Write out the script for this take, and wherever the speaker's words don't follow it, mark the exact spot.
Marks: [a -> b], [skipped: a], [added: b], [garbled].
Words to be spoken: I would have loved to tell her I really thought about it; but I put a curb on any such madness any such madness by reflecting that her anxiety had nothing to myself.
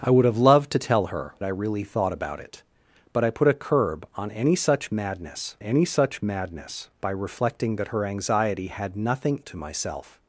I would have loved to tell her I really thought about it; but I put a curb on any such madness any such madness by reflecting that her anxiety had nothing to myself.